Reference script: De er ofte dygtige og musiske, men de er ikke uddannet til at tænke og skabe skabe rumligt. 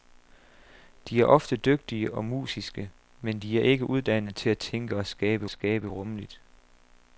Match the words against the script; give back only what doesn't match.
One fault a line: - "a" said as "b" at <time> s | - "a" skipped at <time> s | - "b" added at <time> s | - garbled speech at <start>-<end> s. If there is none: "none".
none